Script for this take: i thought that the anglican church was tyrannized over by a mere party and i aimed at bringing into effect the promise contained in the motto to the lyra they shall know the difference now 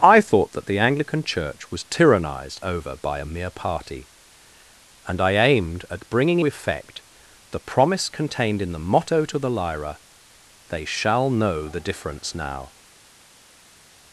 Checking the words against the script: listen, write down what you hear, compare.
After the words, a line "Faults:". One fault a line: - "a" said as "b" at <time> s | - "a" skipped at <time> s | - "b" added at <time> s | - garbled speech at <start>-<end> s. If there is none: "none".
i thought that the anglican church was tyrannized over by a mere party and i aimed at bringing effect the promise contained in the motto to the lyra they shall know the difference now
Faults:
- "into" skipped at 6.4 s